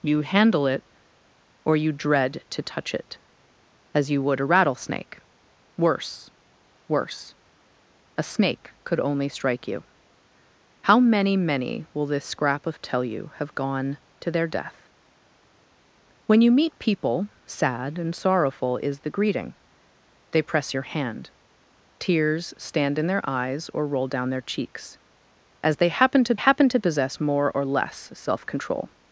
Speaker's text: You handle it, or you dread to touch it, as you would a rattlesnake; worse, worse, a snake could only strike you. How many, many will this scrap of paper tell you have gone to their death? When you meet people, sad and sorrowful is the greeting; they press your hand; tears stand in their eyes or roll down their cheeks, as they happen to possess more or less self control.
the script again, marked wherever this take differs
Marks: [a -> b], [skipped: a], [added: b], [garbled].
You handle it, or you dread to touch it, as you would a rattlesnake; worse, worse, a snake could only strike you. How many, many will this scrap of [skipped: paper] tell you have gone to their death? When you meet people, sad and sorrowful is the greeting; they press your hand; tears stand in their eyes or roll down their cheeks, as they happen to [added: happen to] possess more or less self control.